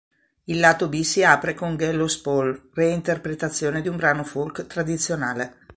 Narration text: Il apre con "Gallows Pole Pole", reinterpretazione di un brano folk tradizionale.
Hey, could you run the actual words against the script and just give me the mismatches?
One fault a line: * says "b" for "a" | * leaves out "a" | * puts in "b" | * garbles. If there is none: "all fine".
* puts in "lato B si"
* leaves out "Pole"